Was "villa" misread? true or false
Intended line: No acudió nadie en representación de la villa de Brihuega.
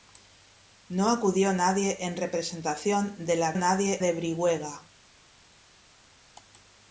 true